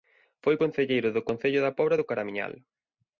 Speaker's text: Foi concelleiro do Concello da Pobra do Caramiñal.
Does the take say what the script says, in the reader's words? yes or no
yes